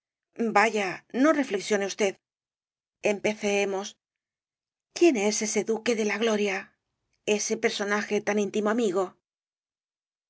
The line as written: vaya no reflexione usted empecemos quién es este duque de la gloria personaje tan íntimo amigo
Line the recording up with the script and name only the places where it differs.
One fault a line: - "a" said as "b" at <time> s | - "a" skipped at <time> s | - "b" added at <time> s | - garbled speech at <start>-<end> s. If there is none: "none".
- "este" said as "ese" at 5.5 s
- "ese" added at 7.4 s